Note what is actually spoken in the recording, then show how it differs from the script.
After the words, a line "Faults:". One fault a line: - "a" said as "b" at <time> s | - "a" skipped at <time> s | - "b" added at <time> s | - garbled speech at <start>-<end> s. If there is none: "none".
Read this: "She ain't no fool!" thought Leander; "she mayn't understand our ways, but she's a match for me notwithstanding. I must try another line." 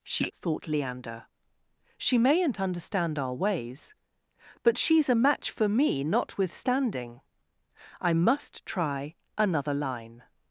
"She!" thought Leander; "she mayn't understand our ways, but she's a match for me notwithstanding. I must try another line."
Faults:
- "ain't no fool" skipped at 0.3 s